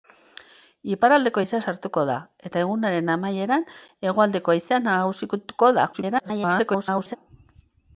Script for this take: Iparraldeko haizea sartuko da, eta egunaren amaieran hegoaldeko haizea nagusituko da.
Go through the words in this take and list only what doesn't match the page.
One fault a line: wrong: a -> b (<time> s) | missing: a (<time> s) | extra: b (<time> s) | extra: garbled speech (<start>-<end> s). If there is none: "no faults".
extra: garbled speech (5.9-7.2 s)